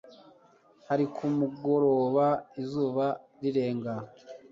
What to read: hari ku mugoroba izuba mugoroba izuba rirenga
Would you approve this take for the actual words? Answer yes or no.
no